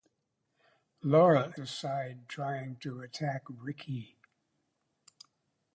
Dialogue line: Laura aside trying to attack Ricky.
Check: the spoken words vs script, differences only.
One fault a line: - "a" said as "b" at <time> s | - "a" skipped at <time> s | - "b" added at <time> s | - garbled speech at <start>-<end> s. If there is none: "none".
none